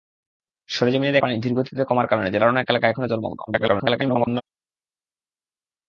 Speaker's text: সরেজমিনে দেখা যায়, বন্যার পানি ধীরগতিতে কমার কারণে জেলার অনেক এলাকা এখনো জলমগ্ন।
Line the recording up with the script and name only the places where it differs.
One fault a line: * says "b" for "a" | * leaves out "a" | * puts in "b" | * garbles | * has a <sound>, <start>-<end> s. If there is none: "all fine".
* leaves out "দেখা যায় বন্যার"
* garbles